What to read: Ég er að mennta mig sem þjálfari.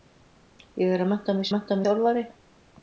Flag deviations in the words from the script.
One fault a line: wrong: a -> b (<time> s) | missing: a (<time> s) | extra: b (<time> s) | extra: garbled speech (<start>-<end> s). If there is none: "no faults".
wrong: sem -> mennta (1.5 s)